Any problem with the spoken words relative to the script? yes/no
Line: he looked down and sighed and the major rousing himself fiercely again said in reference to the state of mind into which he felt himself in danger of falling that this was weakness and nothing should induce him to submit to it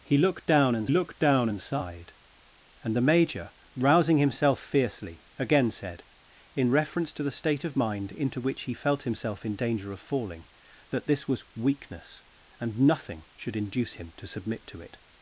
yes